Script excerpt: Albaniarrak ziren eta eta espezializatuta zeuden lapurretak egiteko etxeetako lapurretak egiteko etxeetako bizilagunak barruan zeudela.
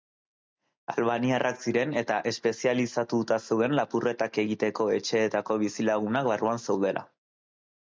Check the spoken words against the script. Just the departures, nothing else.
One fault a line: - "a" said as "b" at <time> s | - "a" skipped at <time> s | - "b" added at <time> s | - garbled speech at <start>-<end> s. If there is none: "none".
- "eta" skipped at 2.2 s
- "lapurretak egiteko etxeetako" skipped at 5.6 s